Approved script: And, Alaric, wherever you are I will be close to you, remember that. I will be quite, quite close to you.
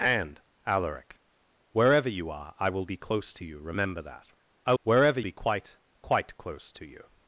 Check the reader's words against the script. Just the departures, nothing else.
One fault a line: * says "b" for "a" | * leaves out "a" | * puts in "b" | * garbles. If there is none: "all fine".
* says "wherever" for "will"